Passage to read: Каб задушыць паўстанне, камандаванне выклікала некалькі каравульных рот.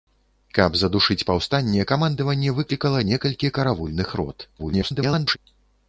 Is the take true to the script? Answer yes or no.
no